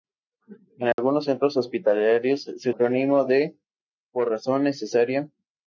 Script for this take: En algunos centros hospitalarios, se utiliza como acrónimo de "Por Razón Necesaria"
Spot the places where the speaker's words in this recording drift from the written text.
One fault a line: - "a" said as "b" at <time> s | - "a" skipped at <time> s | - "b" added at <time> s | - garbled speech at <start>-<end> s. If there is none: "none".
- "utiliza como" skipped at 2.7 s